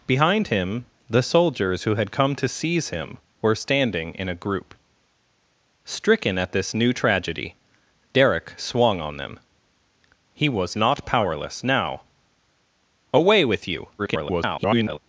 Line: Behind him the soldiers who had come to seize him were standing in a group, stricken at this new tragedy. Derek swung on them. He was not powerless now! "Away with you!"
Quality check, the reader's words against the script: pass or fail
fail